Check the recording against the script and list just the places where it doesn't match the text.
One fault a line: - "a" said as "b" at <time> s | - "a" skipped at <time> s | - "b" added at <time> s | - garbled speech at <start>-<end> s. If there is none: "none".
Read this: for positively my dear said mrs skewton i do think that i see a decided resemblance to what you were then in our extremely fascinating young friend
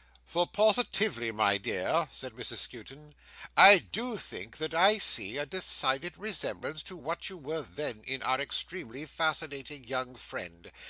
none